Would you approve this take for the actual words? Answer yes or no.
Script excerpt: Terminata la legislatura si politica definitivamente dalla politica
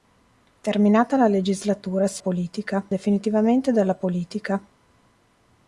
yes